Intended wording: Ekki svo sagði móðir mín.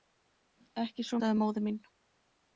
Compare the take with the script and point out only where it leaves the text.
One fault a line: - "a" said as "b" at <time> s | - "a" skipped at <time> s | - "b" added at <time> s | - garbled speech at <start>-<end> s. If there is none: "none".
none